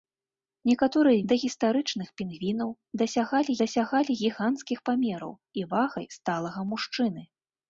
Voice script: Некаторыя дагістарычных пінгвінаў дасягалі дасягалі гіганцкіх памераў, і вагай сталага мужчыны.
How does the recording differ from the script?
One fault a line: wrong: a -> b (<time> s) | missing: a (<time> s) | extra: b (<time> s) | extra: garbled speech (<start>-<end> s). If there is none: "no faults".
no faults